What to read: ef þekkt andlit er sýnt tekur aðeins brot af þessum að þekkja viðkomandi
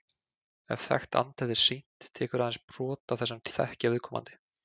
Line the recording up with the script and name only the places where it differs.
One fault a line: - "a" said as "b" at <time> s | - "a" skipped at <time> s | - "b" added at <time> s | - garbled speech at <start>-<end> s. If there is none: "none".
none